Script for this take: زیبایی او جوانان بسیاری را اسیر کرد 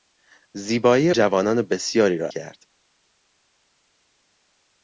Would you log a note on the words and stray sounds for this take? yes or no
yes